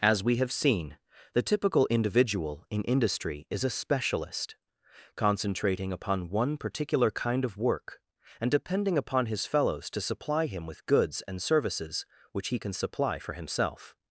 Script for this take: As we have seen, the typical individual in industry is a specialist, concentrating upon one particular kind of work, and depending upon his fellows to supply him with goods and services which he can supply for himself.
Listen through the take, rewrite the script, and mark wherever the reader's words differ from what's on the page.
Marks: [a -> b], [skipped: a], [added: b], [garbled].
As we have seen, the typical individual in industry is a specialist, concentrating upon one particular kind of work, and depending upon his fellows to supply him with goods and services which he can supply for himself.